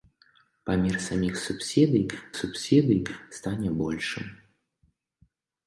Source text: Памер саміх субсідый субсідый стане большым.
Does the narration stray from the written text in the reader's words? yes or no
no